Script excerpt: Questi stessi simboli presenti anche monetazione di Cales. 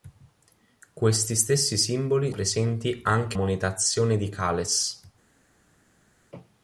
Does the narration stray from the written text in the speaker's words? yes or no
no